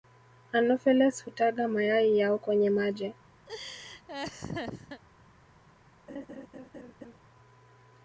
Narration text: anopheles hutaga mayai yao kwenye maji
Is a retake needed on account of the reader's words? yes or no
no